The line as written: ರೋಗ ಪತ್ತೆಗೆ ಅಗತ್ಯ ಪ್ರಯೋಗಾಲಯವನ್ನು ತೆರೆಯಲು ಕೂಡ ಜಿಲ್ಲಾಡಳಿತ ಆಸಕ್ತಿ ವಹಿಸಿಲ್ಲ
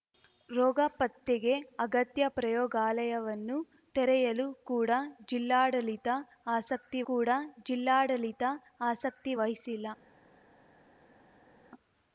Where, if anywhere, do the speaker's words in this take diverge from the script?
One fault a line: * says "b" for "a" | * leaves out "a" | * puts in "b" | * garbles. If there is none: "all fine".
* puts in "ಕೂಡ ಜಿಲ್ಲಾಡಳಿತ ಆಸಕ್ತಿ"